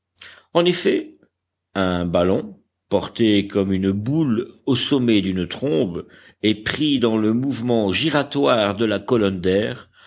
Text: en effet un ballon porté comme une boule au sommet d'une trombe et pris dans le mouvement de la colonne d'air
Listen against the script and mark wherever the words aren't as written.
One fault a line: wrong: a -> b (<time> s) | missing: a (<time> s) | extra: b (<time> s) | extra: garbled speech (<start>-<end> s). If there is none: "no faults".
extra: giratoire (7.9 s)